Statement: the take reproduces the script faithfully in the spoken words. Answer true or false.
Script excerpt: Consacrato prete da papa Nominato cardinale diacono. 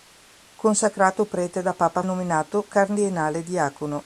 true